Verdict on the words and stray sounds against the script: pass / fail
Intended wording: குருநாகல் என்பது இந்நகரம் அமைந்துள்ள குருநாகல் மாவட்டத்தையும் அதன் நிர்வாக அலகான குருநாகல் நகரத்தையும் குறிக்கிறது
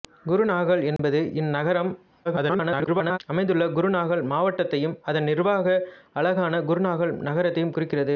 fail